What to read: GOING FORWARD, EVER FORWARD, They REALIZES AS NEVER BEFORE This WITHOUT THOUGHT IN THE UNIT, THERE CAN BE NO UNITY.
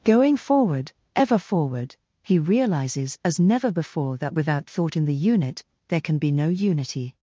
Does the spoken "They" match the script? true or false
false